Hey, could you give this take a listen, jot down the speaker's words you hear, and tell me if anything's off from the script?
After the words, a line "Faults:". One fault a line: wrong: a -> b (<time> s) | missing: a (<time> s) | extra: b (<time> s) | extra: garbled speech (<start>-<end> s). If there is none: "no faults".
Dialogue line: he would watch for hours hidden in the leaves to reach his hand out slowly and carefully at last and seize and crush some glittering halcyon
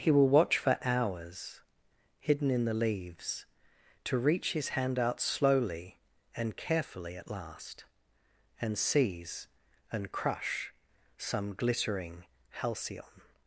he will watch for hours hidden in the leaves to reach his hand out slowly and carefully at last and seize and crush some glittering halcyon
Faults:
wrong: would -> will (0.1 s)